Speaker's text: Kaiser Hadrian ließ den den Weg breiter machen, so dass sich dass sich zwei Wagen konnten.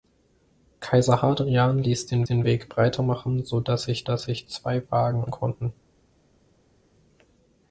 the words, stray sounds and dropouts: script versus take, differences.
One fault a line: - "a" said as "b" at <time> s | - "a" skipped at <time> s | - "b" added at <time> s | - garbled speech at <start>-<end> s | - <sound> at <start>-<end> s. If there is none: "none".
none